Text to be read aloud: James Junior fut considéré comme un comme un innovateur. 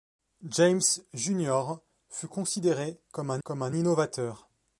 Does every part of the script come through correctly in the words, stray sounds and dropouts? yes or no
yes